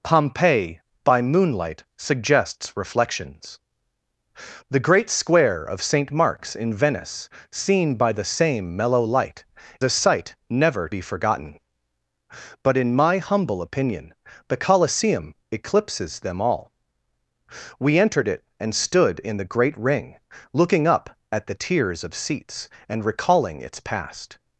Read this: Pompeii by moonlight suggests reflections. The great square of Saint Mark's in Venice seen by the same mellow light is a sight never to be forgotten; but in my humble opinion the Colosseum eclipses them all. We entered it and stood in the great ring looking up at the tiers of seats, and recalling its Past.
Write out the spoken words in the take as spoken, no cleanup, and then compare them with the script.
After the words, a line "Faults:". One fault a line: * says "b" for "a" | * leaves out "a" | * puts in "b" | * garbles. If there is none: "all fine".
Pompeii by moonlight suggests reflections. The great square of Saint Mark's in Venice seen by the same mellow light a sight never be forgotten; but in my humble opinion the Colosseum eclipses them all. We entered it and stood in the great ring looking up at the tiers of seats, and recalling its Past.
Faults:
* leaves out "is"
* leaves out "to"